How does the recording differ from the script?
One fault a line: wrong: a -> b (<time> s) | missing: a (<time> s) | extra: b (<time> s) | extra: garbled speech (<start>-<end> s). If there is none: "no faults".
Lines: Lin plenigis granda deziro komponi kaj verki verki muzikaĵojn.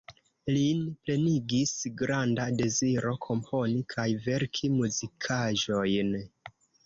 missing: verki (4.7 s)